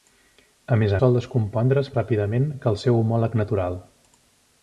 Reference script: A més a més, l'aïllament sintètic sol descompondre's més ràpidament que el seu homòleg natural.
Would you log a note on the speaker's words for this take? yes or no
yes